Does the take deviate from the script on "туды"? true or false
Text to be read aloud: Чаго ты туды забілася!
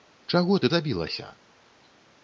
true